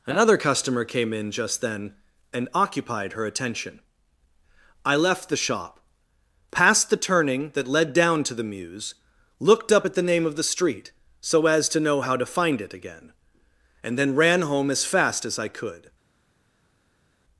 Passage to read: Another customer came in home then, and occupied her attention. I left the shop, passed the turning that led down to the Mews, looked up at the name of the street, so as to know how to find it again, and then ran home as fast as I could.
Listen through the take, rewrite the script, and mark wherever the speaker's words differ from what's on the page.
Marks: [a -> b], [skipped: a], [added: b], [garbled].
Another customer came in [home -> just] then, and occupied her attention. I left the shop, passed the turning that led down to the Mews, looked up at the name of the street, so as to know how to find it again, and then ran home as fast as I could.